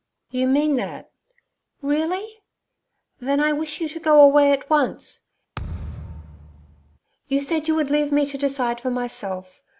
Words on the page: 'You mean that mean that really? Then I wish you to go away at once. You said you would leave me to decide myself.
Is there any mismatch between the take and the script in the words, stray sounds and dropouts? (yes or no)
yes